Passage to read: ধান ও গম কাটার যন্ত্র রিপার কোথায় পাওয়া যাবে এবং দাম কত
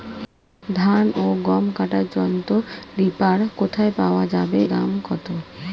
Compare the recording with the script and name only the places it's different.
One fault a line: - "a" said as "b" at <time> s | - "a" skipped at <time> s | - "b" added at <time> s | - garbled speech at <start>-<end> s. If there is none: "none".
- "এবং" skipped at 4.6 s